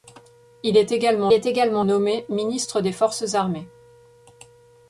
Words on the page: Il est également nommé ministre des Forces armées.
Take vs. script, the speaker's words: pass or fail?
fail